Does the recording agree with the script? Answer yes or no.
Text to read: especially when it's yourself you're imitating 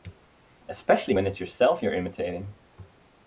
yes